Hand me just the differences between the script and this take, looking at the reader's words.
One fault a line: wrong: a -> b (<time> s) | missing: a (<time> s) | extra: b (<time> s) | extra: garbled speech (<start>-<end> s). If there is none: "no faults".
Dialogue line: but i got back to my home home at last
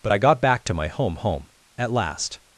no faults